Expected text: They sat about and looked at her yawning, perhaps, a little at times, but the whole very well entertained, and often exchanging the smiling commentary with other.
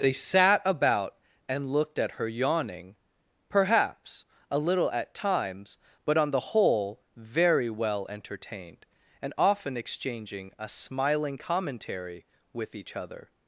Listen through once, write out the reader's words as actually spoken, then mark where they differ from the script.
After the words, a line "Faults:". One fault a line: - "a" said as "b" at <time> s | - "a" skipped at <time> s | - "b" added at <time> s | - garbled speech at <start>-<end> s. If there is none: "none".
They sat about and looked at her yawning, perhaps, a little at times, but on the whole very well entertained, and often exchanging a smiling commentary with each other.
Faults:
- "on" added at 6.2 s
- "the" said as "a" at 10.6 s
- "each" added at 12.8 s